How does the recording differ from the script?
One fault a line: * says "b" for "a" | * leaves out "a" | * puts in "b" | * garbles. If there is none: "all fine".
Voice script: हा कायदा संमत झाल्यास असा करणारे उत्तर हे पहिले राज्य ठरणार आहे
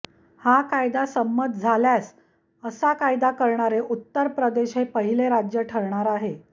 * puts in "कायदा"
* puts in "प्रदेश"